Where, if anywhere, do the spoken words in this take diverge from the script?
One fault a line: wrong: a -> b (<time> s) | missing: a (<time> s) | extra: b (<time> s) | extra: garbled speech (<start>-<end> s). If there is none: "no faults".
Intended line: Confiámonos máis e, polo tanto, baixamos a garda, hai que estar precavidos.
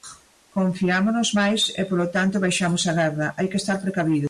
no faults